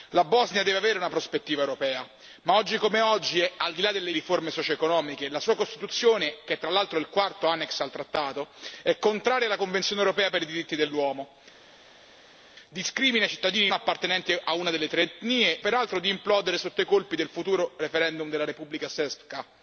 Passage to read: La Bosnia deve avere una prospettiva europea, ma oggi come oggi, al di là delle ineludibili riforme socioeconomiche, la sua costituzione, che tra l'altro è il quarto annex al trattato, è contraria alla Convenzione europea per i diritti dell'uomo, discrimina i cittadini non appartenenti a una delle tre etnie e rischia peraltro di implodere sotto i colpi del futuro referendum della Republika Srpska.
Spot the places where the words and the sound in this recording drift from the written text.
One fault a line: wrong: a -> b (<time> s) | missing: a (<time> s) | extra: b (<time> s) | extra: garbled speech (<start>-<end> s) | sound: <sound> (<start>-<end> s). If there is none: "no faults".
missing: ineludibili (4.1 s)
missing: non (13.7 s)
missing: e rischia (15.6 s)